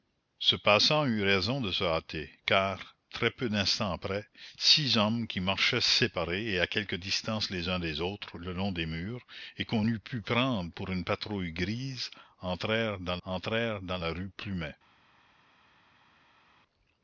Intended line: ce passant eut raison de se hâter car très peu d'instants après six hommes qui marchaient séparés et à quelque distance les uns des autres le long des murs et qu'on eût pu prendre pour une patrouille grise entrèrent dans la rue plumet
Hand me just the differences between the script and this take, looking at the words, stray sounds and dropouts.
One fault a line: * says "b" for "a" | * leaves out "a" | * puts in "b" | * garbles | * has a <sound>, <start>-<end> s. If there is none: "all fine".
* puts in "entrèrent dans"